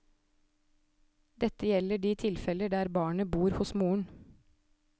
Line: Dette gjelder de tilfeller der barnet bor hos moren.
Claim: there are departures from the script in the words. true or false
false